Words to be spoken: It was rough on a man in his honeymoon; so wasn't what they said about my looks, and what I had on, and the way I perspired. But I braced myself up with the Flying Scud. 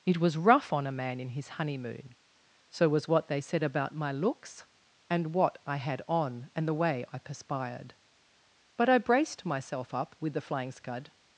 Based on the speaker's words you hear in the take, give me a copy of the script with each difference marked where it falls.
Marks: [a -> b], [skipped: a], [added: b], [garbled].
It was rough on a man in his honeymoon; so [wasn't -> was] what they said about my looks, and what I had on, and the way I perspired. But I braced myself up with the Flying Scud.